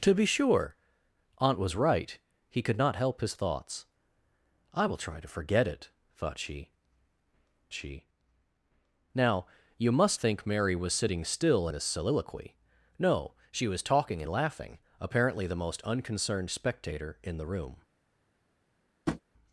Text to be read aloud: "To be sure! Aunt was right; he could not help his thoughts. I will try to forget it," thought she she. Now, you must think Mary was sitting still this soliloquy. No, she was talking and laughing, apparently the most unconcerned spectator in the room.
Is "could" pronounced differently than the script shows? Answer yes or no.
no